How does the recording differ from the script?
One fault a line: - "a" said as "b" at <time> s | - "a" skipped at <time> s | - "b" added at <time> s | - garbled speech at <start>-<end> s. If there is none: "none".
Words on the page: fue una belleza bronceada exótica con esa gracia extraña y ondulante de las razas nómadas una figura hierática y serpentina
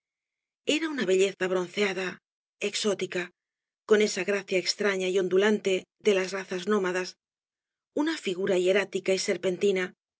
- "fue" said as "era" at 0.7 s